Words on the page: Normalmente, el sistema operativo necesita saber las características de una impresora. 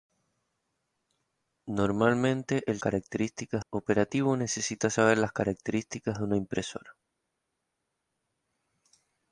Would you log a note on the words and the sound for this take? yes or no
yes